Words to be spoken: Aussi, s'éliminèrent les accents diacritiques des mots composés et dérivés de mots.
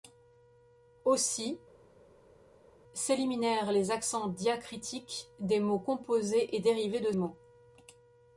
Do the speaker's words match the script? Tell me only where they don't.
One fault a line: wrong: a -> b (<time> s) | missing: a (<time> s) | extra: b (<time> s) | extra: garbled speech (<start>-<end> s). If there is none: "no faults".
no faults